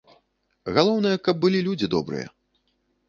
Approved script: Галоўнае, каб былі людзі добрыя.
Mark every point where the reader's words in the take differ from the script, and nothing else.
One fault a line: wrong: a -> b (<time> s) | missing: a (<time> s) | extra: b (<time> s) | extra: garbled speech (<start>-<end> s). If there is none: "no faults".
no faults